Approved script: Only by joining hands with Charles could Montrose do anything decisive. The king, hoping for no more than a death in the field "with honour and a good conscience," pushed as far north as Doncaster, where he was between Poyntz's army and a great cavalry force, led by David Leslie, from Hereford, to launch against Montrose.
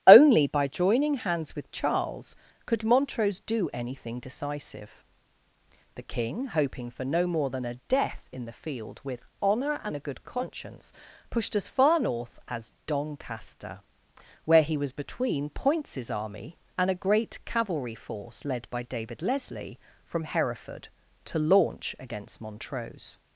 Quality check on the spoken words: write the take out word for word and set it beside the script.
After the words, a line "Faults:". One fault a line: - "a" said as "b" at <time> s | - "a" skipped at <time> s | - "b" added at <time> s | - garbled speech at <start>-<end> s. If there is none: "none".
Only by joining hands with Charles could Montrose do anything decisive. The king, hoping for no more than a death in the field "with honour and a good conscience," pushed as far north as Doncaster, where he was between Poyntz's army and a great cavalry force, led by David Leslie, from Hereford, to launch against Montrose.
Faults:
none